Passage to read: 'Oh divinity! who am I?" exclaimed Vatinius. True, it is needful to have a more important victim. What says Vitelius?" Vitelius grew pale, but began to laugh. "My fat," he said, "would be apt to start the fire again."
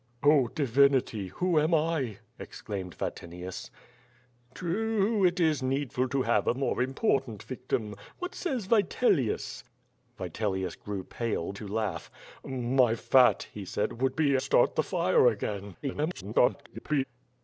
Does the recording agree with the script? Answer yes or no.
no